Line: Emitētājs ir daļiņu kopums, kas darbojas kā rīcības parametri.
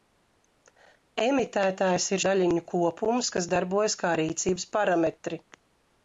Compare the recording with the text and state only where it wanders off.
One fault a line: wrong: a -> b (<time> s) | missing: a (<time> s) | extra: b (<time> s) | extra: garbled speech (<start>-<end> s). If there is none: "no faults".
no faults